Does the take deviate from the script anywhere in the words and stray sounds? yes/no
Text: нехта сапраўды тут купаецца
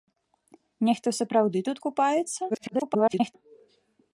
yes